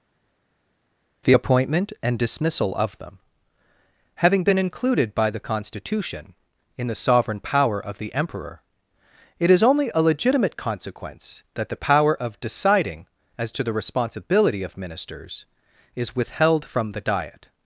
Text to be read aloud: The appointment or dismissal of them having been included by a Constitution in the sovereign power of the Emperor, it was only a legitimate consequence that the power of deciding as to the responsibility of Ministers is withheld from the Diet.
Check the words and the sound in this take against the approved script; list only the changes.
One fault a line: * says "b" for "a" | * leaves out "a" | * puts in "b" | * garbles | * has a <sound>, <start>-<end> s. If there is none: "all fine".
* says "and" for "or"
* says "the" for "a"
* says "is" for "was"